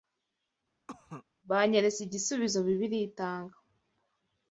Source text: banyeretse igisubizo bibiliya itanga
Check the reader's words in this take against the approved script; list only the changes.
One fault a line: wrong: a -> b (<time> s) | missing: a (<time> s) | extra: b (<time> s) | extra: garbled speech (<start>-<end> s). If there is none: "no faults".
no faults